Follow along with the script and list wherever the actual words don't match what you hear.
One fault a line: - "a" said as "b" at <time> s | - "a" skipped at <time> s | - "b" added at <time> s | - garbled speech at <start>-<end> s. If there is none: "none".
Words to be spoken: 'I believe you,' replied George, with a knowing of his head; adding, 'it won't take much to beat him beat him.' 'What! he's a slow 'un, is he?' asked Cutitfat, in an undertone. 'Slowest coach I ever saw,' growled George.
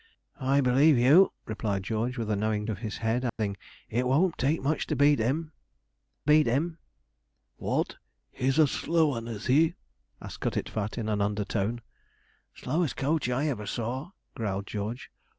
none